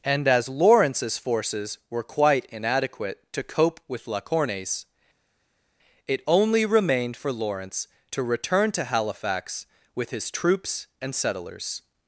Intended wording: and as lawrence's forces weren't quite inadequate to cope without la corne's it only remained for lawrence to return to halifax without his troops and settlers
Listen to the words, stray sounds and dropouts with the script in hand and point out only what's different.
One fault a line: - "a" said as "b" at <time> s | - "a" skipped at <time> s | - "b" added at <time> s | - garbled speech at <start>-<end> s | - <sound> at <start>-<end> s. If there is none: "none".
- "weren't" said as "were" at 1.9 s
- "without" said as "with" at 3.9 s
- "without" said as "with" at 9.9 s